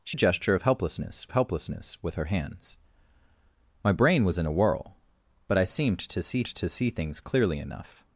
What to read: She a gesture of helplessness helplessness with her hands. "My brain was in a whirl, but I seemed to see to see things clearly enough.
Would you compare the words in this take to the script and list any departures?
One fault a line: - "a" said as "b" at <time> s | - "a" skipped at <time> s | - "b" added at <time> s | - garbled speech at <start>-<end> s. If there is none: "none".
none